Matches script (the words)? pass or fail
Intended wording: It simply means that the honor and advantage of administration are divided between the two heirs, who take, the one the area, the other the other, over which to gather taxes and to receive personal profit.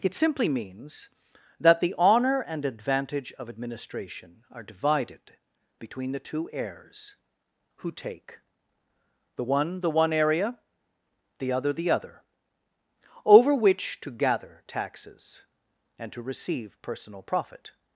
fail